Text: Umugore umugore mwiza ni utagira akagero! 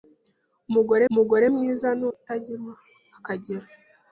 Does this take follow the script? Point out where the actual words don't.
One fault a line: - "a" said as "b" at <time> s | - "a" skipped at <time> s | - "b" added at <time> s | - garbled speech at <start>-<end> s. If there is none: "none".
none